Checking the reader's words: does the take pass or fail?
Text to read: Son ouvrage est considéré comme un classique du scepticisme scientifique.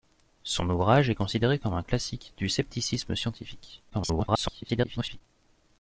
fail